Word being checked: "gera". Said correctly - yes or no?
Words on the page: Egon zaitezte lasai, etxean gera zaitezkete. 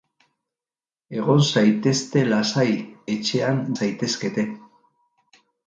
no